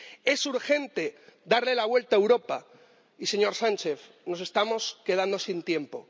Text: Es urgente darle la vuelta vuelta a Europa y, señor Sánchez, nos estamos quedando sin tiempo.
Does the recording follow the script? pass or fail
fail